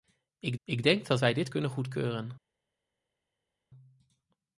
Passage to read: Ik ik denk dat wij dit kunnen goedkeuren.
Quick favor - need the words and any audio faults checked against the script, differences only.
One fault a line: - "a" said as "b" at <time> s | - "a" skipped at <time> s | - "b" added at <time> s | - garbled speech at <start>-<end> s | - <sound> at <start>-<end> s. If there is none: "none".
none